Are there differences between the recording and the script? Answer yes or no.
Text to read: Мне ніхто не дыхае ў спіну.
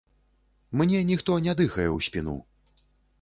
no